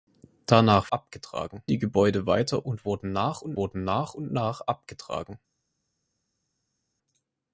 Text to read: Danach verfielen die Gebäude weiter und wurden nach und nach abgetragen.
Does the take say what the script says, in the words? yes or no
no